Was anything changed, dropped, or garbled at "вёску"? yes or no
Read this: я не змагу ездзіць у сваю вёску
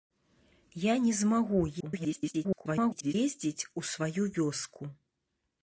no